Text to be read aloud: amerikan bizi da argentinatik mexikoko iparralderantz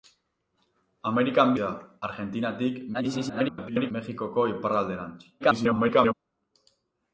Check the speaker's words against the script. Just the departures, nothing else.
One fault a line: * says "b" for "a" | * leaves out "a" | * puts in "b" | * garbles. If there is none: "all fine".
* leaves out "bizi"
* garbles
* garbles